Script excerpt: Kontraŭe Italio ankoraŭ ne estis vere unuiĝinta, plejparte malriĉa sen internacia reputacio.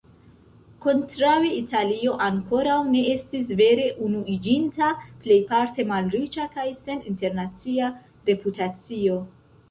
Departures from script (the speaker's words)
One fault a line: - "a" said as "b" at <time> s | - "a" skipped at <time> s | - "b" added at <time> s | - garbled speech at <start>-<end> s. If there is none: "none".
- "kaj" added at 6.6 s